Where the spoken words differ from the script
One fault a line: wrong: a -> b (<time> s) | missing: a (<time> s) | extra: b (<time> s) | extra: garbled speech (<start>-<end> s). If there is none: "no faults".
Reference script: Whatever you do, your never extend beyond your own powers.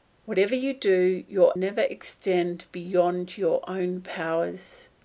no faults